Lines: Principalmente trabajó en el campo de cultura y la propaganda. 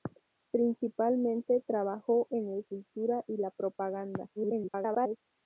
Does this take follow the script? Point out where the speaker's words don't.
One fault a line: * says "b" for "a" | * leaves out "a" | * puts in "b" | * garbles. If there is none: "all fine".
* leaves out "campo de"
* garbles